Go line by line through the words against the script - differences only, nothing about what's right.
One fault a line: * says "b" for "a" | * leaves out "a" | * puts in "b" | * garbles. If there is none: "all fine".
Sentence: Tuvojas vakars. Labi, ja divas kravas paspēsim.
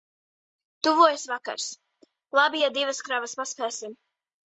all fine